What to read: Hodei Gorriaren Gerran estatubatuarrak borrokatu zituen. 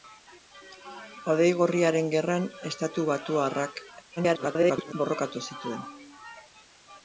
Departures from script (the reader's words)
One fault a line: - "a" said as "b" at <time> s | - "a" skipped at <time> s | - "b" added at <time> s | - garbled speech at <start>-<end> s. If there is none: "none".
- garbled speech at 4.2-4.9 s